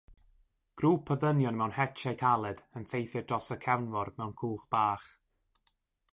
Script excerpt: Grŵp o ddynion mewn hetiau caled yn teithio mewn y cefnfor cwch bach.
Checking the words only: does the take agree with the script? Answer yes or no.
no